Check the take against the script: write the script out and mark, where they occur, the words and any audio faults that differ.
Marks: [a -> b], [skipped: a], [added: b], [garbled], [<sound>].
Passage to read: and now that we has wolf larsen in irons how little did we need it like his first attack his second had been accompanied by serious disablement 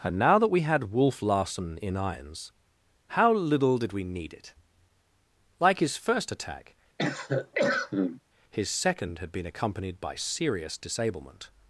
and now that we [has -> had] wolf larsen in irons how little did we need it like his first attack [cough] his second had been accompanied by serious disablement